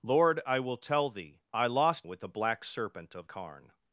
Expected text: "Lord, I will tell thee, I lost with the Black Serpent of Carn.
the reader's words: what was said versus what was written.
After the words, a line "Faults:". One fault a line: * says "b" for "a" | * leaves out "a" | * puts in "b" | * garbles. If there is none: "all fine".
"Lord, I will tell thee, I lost with the Black Serpent of Carn.
Faults:
all fine